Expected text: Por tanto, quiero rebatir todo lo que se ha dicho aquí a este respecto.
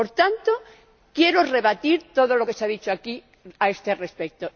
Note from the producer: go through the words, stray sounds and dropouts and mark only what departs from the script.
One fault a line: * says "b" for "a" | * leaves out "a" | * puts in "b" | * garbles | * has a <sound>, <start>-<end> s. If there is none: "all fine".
all fine